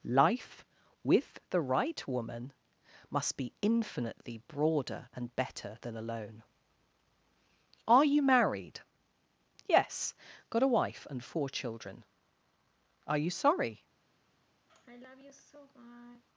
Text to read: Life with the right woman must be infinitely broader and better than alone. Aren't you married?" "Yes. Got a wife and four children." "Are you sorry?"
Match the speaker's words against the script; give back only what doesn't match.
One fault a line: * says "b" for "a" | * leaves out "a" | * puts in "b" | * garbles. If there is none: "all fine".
* says "Are" for "Aren't"